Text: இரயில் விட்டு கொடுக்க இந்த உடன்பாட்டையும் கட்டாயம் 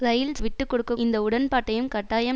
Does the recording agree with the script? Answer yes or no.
yes